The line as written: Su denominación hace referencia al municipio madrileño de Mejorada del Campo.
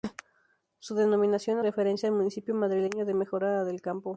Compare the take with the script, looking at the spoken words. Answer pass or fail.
fail